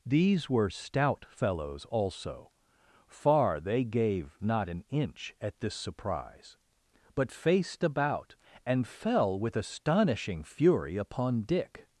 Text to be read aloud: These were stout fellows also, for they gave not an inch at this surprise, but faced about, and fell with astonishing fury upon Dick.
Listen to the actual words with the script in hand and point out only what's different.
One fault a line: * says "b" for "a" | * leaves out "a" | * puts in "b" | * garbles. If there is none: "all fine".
* says "far" for "for"